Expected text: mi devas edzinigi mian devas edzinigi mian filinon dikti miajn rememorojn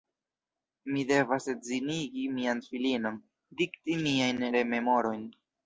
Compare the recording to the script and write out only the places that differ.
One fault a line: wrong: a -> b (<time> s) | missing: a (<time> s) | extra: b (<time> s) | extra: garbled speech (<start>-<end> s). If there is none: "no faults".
missing: devas edzinigi mian (2.6 s)